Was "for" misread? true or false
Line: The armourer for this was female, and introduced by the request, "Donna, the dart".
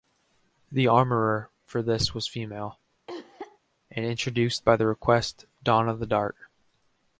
false